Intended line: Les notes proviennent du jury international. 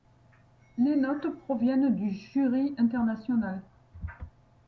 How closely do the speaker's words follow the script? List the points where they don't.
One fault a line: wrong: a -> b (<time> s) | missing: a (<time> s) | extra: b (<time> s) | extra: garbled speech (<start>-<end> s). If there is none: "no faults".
no faults